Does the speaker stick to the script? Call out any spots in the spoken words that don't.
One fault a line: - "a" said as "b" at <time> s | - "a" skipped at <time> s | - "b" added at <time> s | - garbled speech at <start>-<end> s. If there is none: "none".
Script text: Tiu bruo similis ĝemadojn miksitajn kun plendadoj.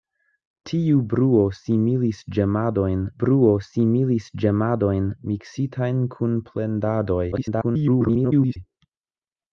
- "bruo similis ĝemadojn" added at 3.2 s
- garbled speech at 7.3-8.6 s